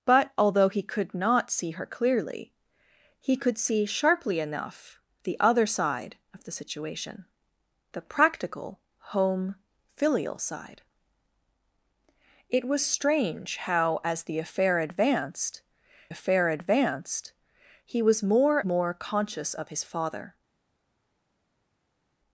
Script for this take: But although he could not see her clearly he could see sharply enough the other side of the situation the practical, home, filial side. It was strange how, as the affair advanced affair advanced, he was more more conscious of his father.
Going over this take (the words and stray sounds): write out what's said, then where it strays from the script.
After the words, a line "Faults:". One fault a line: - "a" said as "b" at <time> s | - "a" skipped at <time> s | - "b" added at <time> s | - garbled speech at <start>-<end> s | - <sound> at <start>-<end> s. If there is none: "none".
But although he could not see her clearly he could see sharply enough the other side of the situation the practical, home, filial side. It was strange how, as the affair advanced affair advanced, he was more more conscious of his father.
Faults:
none